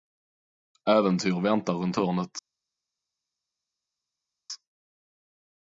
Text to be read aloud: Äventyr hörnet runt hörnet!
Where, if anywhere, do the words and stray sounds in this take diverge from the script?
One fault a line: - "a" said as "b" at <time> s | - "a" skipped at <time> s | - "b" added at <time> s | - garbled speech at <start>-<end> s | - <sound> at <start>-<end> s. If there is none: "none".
- "hörnet" said as "väntar" at 1.4 s